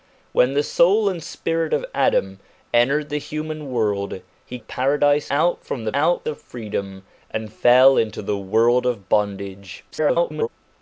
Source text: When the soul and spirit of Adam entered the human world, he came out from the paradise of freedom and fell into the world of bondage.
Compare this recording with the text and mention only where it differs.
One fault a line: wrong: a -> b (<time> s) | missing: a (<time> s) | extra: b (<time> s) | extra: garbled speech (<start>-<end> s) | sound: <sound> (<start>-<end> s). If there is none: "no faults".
wrong: came -> paradise (4.6 s)
wrong: paradise -> out (5.9 s)
extra: garbled speech (9.9-10.5 s)